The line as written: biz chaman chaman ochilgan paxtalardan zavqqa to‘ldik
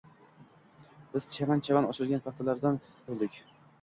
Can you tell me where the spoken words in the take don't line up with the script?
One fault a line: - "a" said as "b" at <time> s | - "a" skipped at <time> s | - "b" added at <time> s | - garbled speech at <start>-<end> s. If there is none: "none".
- "zavqqa" skipped at 2.8 s